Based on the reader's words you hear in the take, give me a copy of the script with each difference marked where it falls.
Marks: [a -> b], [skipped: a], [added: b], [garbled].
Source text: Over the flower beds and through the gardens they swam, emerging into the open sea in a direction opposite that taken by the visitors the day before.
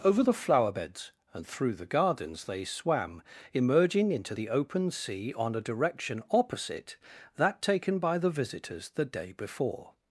Over the flower beds and through the gardens they swam, emerging into the open sea [in -> on] a direction opposite that taken by the visitors the day before.